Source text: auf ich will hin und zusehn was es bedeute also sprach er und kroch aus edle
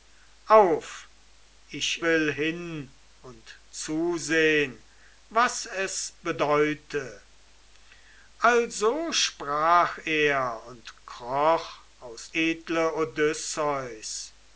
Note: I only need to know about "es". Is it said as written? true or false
true